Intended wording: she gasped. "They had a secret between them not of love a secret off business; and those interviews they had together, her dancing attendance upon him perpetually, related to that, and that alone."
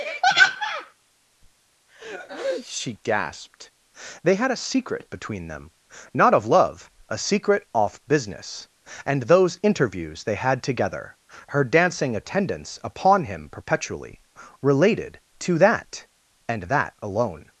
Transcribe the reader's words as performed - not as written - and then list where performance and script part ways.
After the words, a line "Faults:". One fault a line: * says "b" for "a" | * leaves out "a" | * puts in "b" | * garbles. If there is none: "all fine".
she gasped. "They had a secret between them not of love a secret off business; and those interviews they had together, her dancing attendance upon him perpetually, related to that, and that alone."
Faults:
all fine